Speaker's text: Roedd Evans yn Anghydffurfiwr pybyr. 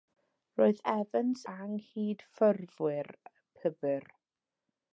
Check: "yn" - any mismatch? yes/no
yes